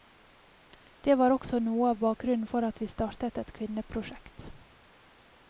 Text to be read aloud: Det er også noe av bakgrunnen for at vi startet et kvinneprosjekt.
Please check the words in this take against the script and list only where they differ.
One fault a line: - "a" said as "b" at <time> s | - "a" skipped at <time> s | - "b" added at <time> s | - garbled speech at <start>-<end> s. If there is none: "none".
- "er" said as "var" at 1.2 s